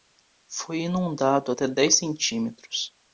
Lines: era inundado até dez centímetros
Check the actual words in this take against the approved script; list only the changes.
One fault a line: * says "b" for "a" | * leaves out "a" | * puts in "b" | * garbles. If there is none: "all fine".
* says "foi" for "era"